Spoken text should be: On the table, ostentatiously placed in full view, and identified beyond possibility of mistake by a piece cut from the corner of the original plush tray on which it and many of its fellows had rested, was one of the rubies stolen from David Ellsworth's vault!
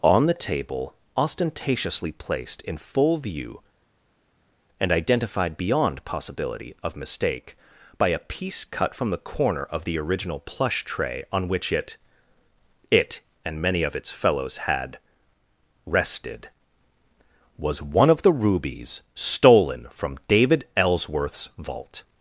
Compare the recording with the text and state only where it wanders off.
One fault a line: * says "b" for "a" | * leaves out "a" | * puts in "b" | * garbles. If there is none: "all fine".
* puts in "it"